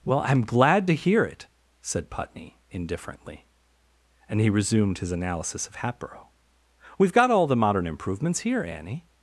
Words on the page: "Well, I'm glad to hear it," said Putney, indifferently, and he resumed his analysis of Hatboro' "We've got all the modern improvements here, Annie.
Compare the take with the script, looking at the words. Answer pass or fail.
pass